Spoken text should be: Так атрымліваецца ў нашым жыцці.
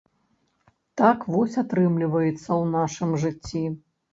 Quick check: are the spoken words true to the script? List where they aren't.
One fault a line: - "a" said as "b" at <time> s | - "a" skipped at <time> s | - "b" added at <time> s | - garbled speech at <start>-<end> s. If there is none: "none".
- "вось" added at 1.4 s